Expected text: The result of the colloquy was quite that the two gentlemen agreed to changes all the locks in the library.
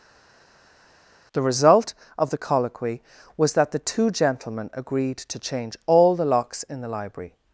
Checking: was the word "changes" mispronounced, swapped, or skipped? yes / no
yes